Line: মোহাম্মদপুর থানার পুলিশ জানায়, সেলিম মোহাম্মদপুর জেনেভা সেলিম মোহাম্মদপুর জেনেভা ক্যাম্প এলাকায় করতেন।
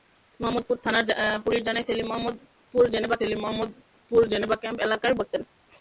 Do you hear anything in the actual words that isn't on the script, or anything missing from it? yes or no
no